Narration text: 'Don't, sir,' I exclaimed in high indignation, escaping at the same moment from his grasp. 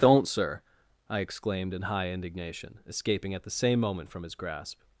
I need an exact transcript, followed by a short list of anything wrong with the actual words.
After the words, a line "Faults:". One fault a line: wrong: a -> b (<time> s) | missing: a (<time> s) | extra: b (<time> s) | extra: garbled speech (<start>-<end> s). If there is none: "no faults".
'Don't, sir,' I exclaimed in high indignation, escaping at the same moment from his grasp.
Faults:
no faults